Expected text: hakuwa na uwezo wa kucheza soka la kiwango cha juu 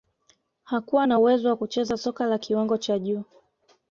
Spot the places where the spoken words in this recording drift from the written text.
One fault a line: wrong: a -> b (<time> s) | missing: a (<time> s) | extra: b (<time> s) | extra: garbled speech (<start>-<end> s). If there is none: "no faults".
no faults